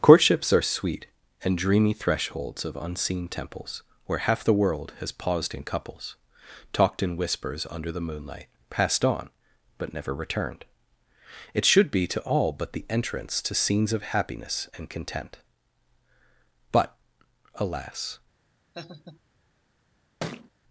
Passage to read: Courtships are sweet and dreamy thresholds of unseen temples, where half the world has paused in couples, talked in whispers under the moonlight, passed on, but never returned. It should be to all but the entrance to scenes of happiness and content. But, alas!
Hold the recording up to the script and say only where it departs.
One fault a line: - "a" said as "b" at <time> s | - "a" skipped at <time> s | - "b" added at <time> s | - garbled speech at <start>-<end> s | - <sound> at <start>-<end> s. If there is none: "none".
- laugh at 18.7-19.2 s
- thud at 20.2-20.5 s